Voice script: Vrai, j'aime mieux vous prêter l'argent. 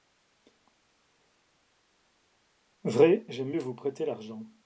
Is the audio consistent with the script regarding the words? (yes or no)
yes